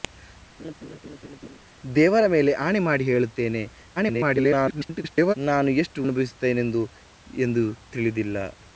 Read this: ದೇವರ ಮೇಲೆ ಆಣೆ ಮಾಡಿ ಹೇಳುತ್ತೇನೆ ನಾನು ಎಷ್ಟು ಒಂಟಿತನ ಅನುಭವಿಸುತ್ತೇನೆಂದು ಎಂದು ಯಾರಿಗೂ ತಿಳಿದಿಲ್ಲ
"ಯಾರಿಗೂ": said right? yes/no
no